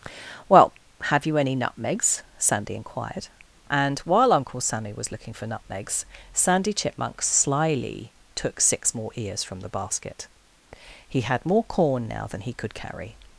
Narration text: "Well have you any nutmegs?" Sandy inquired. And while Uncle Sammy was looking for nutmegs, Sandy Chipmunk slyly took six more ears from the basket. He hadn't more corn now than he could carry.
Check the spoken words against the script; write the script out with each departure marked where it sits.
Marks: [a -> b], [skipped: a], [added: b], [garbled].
"Well have you any nutmegs?" Sandy inquired. And while Uncle Sammy was looking for nutmegs, Sandy Chipmunk slyly took six more ears from the basket. He [hadn't -> had] more corn now than he could carry.